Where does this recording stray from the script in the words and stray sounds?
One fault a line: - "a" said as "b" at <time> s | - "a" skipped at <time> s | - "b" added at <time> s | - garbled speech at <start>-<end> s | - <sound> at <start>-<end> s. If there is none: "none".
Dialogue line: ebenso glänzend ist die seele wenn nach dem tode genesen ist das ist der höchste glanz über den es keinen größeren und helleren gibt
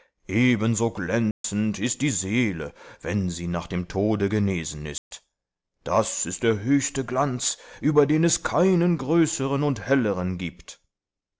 - dropout at 1.3-1.4 s
- "sie" added at 3.3 s
- dropout at 5.0-5.1 s